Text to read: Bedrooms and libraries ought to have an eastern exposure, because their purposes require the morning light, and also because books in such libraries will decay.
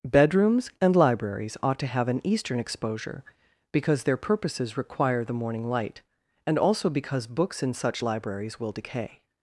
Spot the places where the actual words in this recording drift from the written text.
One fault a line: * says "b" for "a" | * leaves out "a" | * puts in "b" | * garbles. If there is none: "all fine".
all fine